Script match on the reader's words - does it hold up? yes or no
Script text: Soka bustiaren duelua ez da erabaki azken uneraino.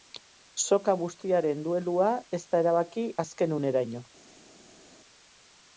yes